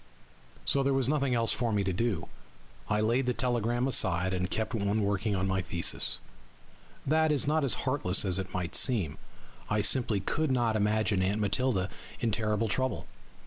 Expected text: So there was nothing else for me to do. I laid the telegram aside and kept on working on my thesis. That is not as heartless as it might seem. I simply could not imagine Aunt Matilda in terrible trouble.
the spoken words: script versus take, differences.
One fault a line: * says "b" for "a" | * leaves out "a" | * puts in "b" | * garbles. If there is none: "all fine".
all fine